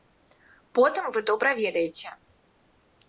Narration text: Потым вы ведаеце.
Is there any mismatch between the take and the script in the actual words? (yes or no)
yes